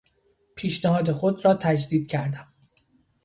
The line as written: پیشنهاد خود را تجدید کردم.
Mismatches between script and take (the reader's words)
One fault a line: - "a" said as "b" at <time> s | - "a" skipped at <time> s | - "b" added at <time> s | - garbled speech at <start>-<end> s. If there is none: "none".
none